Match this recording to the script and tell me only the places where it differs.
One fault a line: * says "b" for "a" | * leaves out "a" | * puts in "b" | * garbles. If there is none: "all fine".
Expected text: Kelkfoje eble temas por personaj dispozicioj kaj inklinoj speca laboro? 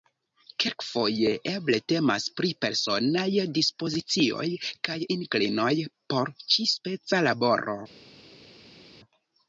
* says "pri" for "por"
* puts in "por ĉi"